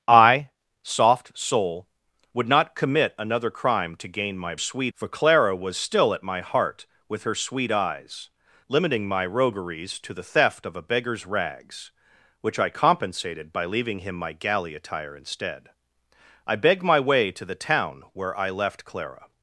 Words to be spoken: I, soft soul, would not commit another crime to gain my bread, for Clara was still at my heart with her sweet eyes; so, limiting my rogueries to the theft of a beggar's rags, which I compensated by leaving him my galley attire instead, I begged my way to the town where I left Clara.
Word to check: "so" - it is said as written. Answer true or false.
false